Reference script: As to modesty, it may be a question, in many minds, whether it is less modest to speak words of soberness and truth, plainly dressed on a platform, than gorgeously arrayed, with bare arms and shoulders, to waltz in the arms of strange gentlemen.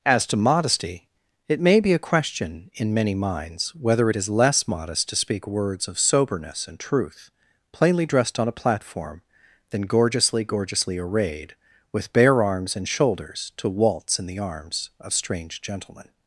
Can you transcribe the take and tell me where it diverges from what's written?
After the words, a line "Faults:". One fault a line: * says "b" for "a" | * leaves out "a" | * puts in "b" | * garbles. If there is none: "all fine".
As to modesty, it may be a question, in many minds, whether it is less modest to speak words of soberness and truth, plainly dressed on a platform, than gorgeously gorgeously arrayed, with bare arms and shoulders, to waltz in the arms of strange gentlemen.
Faults:
* puts in "gorgeously"